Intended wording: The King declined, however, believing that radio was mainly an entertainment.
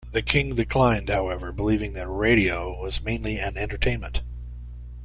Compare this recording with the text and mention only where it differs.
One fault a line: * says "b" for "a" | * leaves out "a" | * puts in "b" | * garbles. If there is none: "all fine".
all fine